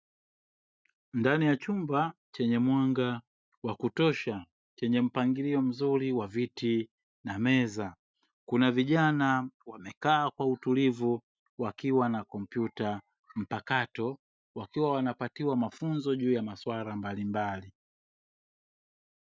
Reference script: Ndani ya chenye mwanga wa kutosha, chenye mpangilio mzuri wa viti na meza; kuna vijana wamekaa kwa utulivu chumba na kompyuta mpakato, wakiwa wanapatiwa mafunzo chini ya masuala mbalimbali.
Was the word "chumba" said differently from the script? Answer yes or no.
yes